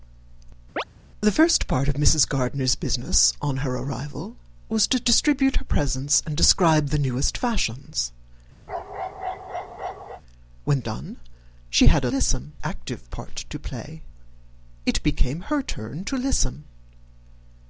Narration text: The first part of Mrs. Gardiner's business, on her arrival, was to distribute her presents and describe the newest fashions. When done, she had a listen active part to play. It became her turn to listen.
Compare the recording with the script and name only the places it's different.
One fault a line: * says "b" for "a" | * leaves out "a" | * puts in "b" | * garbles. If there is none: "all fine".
all fine